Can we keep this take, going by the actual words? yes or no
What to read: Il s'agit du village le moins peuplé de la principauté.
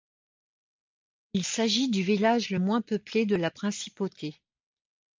yes